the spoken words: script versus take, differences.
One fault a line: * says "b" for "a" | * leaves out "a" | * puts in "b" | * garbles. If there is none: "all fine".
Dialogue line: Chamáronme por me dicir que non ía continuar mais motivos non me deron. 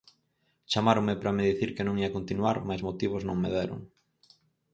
* says "para" for "por"